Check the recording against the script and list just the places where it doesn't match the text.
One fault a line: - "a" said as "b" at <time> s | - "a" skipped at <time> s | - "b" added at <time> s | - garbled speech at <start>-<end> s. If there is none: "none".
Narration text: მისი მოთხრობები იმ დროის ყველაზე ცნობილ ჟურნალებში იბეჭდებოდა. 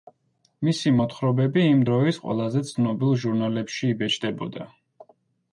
none